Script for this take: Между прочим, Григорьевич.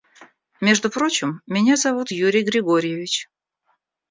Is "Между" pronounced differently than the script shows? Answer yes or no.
no